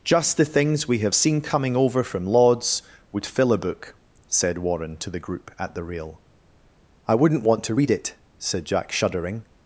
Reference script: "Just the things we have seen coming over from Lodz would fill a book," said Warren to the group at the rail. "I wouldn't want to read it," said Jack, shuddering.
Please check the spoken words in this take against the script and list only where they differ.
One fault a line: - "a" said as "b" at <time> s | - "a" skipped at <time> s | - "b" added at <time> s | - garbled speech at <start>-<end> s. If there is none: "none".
none